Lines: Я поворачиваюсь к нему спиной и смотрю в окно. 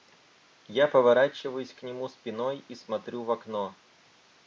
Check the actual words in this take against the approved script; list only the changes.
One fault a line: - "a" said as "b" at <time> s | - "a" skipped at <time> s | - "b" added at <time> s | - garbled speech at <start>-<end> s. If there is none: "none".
none